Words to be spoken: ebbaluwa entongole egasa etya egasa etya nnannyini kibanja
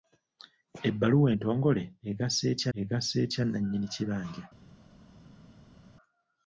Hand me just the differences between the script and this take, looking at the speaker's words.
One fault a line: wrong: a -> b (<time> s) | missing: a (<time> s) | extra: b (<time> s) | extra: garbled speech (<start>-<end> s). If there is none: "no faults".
no faults